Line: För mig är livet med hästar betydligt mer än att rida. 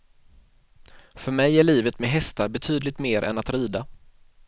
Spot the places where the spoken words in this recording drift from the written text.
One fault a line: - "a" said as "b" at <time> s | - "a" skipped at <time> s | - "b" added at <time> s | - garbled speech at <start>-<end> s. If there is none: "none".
none